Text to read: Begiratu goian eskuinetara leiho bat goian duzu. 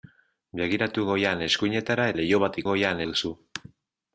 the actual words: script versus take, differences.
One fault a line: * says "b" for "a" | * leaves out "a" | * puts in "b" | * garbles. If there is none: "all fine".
all fine